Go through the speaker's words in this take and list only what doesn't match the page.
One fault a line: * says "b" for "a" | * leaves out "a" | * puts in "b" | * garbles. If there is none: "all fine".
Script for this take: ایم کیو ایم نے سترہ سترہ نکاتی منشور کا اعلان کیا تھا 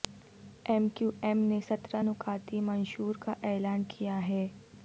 * leaves out "سترہ"
* says "ہے" for "تھا"